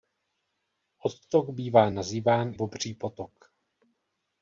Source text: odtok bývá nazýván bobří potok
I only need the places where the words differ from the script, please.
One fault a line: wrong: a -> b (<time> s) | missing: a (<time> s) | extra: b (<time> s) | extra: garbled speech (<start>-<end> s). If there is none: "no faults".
no faults